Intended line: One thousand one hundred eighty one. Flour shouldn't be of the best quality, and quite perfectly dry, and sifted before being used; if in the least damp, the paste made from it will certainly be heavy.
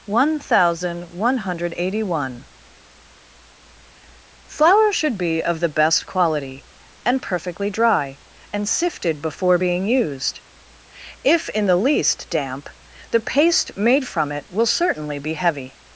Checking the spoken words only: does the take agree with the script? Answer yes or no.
no